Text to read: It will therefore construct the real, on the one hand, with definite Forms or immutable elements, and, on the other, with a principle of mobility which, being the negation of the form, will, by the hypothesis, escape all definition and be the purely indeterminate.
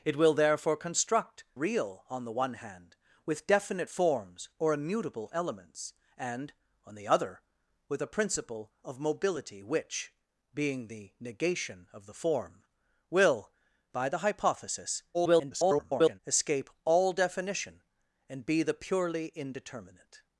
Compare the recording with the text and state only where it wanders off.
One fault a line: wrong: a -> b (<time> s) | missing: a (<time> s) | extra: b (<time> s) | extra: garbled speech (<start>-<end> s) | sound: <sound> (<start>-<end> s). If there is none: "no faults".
missing: the (1.4 s)
extra: garbled speech (15.1-16.2 s)